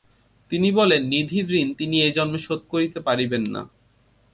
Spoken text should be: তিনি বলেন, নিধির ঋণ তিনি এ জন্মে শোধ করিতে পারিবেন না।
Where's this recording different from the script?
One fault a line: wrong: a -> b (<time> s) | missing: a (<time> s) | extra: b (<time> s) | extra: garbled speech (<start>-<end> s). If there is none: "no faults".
no faults